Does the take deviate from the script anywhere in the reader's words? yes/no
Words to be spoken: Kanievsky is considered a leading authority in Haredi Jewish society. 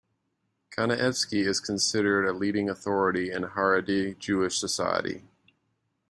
no